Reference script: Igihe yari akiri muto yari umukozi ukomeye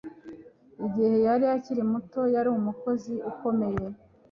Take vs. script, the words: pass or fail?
pass